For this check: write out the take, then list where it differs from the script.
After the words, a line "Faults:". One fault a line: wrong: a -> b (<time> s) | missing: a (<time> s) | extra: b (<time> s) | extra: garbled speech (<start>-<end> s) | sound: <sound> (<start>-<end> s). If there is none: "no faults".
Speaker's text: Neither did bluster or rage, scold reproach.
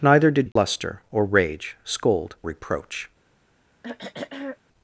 Neither did bluster or rage, scold reproach.
Faults:
sound: dropout (0.5-0.6 s)
sound: throat clearing (3.8-4.6 s)